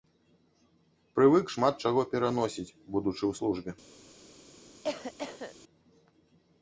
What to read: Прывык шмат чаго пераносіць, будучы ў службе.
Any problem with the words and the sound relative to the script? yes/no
yes